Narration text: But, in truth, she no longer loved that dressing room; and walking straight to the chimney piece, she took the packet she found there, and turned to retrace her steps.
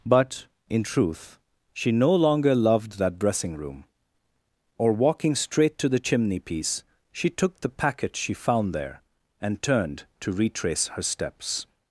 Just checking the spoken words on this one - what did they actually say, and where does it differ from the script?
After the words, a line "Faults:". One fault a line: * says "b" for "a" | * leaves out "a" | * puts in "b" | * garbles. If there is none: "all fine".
But, in truth, she no longer loved that dressing room; or walking straight to the chimney piece, she took the packet she found there, and turned to retrace her steps.
Faults:
* says "or" for "and"